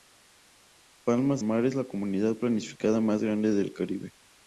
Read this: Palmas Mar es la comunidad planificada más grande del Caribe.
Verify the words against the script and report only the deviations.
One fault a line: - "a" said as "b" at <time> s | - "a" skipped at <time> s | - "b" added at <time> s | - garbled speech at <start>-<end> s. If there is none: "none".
none